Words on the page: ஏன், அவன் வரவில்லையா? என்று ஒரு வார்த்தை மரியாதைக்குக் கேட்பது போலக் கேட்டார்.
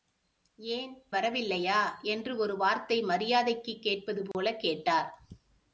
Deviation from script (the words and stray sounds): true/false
true